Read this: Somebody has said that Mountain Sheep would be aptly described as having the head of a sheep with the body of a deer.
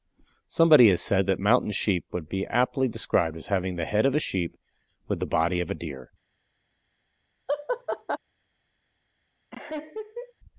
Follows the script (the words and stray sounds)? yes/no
no